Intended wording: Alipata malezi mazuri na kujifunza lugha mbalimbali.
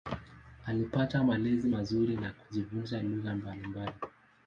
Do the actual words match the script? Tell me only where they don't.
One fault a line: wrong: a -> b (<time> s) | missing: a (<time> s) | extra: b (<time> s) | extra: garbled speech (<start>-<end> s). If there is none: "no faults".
no faults